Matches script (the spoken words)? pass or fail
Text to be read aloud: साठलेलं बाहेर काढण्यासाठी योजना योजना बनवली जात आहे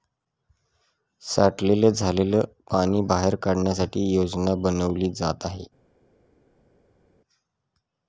fail